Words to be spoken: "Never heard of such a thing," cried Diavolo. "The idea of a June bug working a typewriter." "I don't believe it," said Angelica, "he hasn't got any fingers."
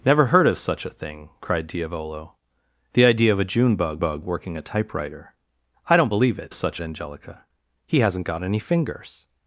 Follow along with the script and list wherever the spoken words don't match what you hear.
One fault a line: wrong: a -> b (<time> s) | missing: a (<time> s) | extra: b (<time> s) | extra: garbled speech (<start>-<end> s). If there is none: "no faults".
extra: bug (4.0 s)
wrong: said -> such (6.5 s)